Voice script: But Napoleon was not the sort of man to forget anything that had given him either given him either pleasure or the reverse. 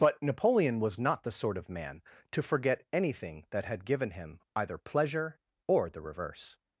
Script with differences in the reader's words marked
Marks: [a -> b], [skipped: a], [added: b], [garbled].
But Napoleon was not the sort of man to forget anything that had given him either [skipped: given him either] pleasure or the reverse.